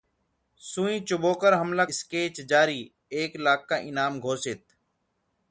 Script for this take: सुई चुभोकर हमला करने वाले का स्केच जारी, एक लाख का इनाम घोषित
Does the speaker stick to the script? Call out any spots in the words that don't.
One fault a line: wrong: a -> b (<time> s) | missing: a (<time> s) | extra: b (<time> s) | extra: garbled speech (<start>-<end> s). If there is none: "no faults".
missing: करने वाले का (1.9 s)